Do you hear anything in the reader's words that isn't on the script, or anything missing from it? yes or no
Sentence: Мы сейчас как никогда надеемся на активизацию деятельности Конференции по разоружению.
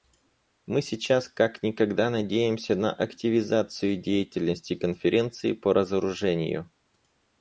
no